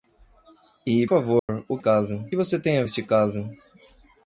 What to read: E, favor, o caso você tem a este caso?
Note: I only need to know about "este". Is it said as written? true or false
true